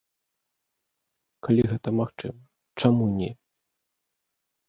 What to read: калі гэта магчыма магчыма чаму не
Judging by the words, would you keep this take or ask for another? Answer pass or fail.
fail